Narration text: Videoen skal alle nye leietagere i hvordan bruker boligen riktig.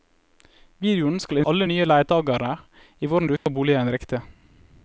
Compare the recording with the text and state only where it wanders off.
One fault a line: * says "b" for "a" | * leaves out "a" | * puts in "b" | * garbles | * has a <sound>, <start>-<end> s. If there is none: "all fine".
* has a dropout, 3.4-3.5 s